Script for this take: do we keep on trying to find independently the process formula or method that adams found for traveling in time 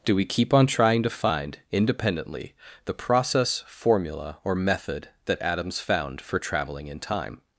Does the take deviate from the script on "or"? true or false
false